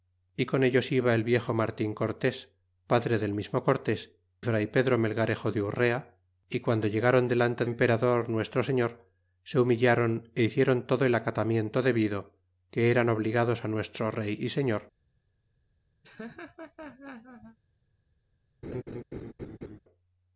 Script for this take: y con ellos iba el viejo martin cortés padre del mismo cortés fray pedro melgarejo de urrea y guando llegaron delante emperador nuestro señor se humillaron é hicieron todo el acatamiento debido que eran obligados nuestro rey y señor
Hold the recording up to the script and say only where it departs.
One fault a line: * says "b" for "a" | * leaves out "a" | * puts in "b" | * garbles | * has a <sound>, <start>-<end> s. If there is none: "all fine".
* has a laugh, 16.0-17.6 s
* has a laugh, 18.6-19.8 s